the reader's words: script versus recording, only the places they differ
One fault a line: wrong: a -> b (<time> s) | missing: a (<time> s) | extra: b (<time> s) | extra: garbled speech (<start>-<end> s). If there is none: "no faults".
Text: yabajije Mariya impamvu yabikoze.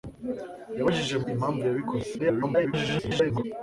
missing: Mariya (1.1 s)
extra: garbled speech (2.2-3.4 s)